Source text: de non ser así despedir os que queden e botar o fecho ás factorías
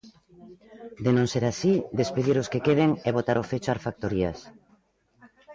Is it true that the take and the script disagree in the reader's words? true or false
false